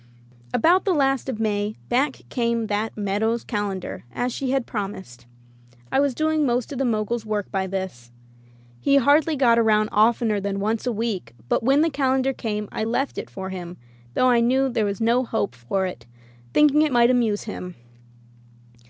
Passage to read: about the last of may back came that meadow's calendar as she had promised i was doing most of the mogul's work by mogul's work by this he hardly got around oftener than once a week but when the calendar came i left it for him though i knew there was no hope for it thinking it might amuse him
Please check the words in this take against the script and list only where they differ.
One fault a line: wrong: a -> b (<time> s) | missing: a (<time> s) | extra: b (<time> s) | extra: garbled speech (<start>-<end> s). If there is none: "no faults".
missing: mogul's work by (7.7 s)